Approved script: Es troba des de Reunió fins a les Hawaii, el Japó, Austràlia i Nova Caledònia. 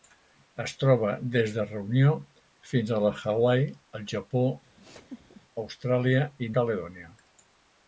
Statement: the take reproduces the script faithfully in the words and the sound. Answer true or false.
false